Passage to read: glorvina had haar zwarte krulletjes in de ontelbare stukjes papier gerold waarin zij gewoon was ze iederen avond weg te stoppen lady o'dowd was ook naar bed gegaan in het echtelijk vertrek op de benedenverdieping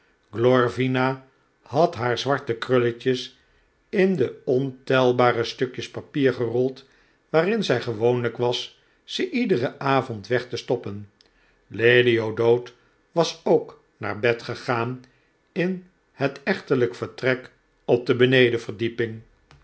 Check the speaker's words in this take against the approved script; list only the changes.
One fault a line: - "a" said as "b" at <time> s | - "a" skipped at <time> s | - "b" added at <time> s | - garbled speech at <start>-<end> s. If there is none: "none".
none